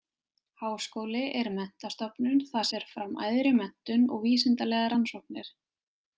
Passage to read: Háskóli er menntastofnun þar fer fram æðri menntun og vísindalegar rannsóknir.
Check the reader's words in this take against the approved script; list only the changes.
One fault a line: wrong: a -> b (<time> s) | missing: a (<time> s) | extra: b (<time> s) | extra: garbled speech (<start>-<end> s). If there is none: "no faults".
no faults